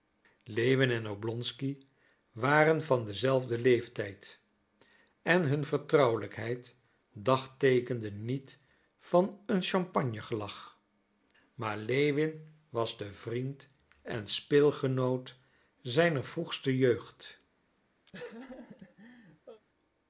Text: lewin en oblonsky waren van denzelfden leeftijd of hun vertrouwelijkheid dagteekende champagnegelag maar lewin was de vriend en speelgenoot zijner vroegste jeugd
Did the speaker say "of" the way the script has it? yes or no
no